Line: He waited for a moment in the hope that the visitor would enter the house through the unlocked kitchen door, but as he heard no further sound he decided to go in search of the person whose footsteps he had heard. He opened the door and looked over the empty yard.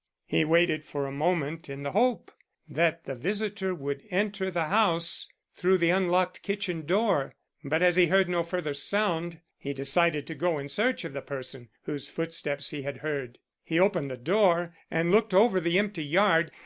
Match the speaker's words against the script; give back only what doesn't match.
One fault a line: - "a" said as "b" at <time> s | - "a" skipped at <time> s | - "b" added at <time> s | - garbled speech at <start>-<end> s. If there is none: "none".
none